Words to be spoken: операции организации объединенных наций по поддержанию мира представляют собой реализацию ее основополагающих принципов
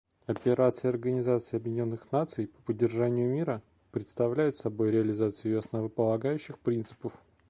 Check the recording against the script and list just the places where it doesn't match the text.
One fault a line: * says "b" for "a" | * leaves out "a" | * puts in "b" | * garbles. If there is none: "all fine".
all fine